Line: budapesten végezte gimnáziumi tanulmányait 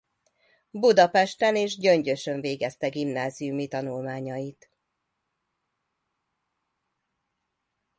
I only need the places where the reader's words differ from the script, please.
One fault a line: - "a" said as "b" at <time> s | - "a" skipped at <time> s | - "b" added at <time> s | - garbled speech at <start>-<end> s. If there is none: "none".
- "és gyöngyösön" added at 1.6 s